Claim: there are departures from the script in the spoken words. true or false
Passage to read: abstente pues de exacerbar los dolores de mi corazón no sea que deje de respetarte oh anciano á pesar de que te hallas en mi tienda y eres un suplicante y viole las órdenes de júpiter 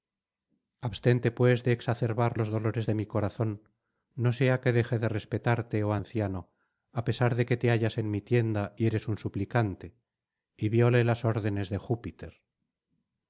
false